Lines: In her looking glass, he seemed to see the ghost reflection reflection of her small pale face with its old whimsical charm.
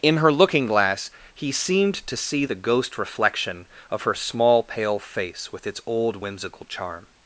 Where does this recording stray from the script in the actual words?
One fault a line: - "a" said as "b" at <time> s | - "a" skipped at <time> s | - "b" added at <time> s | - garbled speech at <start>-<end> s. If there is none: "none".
- "reflection" skipped at 3.7 s